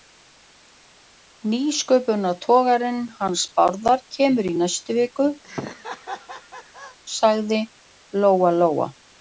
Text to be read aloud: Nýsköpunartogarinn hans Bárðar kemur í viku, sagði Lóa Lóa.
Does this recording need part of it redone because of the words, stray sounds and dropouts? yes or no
yes